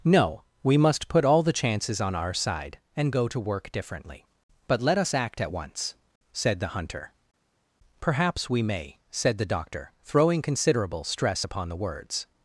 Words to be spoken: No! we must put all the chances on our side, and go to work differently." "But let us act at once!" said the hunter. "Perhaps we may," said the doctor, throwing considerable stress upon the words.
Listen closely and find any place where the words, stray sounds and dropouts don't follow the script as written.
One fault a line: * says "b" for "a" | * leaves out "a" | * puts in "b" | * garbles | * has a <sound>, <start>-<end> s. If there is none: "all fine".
all fine